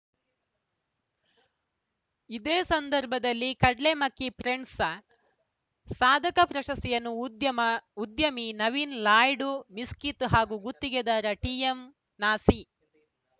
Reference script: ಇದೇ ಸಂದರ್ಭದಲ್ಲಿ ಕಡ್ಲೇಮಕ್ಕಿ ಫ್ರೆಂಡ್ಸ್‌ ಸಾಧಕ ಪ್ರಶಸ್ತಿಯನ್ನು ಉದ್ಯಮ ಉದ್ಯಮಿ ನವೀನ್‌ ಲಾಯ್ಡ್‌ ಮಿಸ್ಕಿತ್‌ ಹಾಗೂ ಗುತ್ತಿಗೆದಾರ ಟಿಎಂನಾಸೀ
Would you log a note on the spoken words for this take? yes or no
no